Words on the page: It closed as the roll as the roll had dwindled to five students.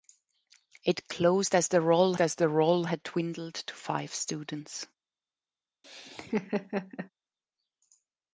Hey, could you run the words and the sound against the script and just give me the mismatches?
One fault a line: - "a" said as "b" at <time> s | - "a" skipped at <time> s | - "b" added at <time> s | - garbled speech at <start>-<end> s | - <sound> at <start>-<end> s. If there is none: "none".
- laugh at 5.8-7.1 s